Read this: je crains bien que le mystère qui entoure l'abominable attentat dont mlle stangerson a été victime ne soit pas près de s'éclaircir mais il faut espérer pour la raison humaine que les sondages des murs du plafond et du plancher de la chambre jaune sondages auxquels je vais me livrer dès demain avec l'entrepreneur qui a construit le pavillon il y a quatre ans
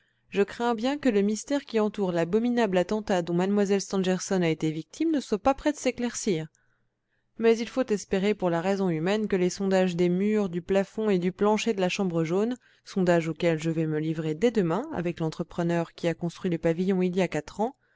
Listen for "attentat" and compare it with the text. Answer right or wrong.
right